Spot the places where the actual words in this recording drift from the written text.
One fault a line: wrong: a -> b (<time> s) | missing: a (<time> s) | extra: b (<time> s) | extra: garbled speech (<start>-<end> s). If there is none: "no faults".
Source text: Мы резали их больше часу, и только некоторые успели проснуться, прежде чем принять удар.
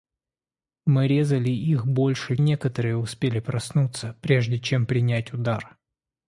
missing: часу и только (2.4 s)